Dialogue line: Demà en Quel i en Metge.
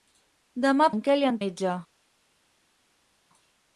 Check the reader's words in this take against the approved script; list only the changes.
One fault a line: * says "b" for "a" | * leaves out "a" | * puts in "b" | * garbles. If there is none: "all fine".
all fine